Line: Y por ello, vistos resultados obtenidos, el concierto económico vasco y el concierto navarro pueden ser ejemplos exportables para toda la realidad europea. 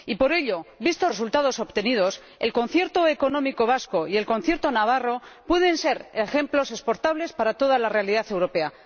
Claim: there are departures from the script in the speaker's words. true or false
false